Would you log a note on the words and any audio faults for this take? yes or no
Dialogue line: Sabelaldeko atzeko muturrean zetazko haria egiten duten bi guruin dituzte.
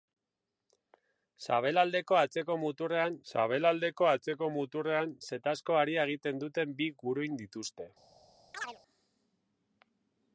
yes